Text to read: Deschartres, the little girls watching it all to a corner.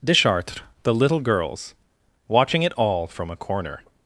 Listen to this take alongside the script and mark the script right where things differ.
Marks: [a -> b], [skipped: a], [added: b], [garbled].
Deschartres, the little girls watching it all [to -> from] a corner.